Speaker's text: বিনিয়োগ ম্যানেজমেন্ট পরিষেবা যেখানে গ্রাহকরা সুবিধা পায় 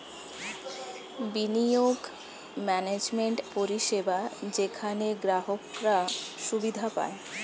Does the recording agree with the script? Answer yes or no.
yes